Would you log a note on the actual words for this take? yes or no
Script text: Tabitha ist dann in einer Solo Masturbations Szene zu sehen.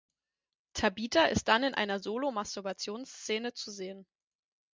no